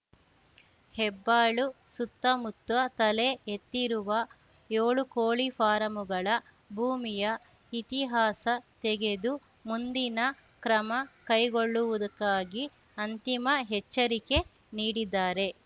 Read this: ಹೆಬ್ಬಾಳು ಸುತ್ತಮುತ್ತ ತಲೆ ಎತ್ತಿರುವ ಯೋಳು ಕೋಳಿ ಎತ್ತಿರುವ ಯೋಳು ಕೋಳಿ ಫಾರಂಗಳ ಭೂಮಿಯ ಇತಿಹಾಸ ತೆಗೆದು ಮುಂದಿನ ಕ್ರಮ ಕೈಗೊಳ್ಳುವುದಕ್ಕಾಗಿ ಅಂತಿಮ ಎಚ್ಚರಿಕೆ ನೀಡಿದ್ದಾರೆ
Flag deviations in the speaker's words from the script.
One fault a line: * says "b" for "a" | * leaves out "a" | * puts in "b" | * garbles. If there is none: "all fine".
* leaves out "ಎತ್ತಿರುವ ಯೋಳು ಕೋಳಿ"